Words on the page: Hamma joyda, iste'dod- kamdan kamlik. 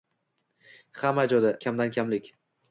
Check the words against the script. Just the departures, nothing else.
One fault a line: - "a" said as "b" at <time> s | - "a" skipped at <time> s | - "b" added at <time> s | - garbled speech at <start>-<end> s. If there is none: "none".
- "iste'dod" skipped at 1.5 s